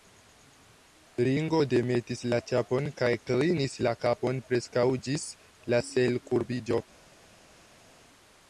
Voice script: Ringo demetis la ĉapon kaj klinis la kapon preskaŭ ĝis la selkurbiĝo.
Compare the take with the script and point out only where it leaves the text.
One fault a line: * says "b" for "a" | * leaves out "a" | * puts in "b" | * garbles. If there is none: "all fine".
all fine